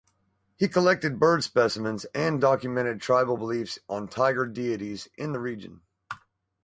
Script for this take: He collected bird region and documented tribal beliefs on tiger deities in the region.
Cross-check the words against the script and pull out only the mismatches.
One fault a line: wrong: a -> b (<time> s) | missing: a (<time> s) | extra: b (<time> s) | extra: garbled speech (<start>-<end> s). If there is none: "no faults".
wrong: region -> specimens (1.4 s)